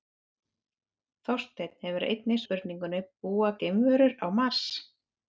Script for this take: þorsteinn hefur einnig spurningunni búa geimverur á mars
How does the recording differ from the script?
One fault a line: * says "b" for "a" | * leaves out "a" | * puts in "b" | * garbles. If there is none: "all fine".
all fine